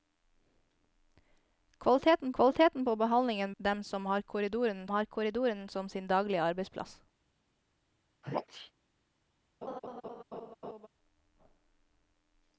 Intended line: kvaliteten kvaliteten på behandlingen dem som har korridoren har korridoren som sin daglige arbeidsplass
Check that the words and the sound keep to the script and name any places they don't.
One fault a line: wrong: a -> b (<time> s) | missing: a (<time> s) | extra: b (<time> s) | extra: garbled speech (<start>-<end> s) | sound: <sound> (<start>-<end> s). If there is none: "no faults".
sound: sneeze (8.2-8.7 s)
sound: laugh (9.6-10.9 s)